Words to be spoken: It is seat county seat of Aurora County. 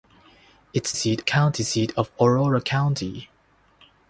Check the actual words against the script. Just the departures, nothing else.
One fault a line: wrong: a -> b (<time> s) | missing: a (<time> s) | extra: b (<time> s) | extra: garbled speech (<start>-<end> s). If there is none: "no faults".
no faults